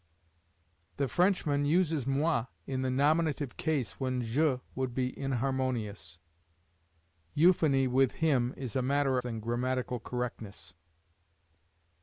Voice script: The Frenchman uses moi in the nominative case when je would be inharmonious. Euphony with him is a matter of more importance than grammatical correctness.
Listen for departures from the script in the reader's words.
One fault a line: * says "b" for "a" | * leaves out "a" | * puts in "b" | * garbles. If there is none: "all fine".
* leaves out "of more importance"